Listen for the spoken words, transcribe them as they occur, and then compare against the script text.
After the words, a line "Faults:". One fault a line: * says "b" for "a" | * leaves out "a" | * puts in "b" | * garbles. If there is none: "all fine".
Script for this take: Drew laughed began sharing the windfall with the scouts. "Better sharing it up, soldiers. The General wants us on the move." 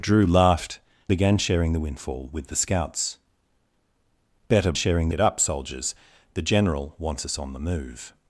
Drew laughed began sharing the windfall with the scouts. "Better sharing it up, soldiers. The General wants us on the move."
Faults:
all fine